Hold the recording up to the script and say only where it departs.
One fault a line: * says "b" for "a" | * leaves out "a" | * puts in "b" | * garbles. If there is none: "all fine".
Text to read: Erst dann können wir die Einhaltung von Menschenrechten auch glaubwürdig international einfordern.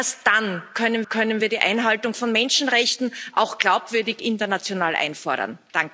* puts in "können"